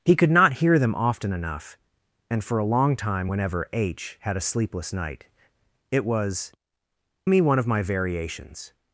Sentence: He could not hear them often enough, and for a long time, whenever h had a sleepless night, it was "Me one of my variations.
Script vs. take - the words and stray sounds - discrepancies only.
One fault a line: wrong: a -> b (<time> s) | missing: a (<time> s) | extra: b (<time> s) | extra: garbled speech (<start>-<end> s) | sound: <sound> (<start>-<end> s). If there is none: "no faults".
no faults